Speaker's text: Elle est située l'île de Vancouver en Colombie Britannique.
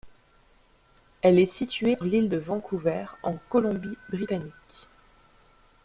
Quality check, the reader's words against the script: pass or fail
pass